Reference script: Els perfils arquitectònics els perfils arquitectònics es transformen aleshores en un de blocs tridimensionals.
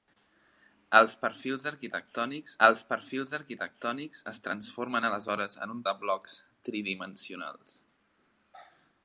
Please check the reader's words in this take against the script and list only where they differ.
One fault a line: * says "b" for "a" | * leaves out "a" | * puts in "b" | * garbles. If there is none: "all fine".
all fine